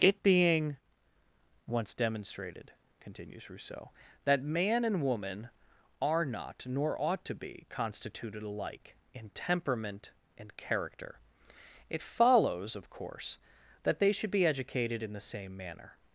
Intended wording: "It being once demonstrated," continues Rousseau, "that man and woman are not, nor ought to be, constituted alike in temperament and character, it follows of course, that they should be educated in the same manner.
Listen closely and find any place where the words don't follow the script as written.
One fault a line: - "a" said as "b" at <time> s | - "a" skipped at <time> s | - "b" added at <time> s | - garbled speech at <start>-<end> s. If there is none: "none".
none